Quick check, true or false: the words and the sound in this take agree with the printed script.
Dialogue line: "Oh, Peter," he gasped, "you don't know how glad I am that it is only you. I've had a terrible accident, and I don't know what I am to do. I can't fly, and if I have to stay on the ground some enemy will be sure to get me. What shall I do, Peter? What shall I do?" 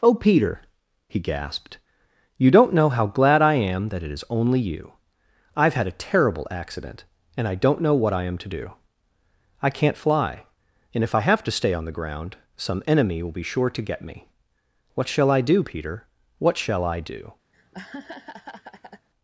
false